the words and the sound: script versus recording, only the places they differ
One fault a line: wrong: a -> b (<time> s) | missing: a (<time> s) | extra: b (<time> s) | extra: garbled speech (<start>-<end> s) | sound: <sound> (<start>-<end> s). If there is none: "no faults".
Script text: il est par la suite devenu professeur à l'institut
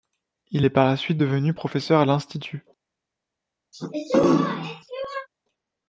sound: throat clearing (3.7-5.3 s)